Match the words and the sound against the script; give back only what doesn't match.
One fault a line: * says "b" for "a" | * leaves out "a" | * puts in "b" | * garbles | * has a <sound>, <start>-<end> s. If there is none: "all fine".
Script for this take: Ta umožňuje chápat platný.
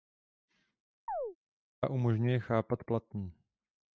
* has a chirp, 1.1-1.4 s